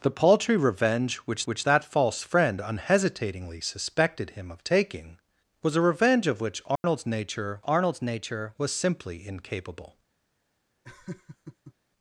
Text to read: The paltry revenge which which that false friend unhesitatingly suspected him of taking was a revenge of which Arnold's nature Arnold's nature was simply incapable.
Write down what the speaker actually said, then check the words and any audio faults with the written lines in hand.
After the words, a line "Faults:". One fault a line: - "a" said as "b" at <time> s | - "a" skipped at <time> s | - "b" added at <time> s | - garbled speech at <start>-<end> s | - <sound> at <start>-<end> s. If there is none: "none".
The paltry revenge which which that false friend unhesitatingly suspected him of taking was a revenge of which Arnold's nature Arnold's nature was simply incapable.
Faults:
- dropout at 6.8-6.8 s
- laugh at 10.8-11.7 s